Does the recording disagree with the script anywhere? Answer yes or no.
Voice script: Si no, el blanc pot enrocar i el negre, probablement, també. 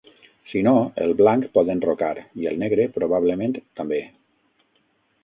no